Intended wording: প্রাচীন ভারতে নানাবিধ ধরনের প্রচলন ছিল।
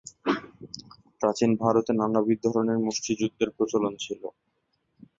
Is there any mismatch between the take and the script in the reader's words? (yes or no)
yes